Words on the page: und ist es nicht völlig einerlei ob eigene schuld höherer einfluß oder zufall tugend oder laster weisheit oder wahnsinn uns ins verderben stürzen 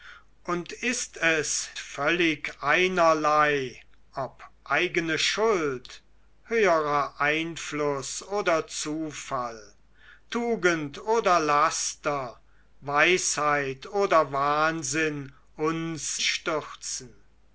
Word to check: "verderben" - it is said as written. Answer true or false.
false